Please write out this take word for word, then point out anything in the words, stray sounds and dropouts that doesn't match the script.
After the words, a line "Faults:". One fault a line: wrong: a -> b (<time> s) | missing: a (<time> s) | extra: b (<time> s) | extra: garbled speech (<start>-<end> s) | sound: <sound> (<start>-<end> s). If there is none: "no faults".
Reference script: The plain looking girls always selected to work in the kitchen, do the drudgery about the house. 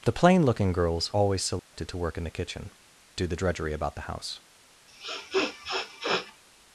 The plain looking girls always selected to work in the kitchen, do the drudgery about the house.
Faults:
sound: dropout (1.6-1.7 s)
sound: sniff (4.9-6.4 s)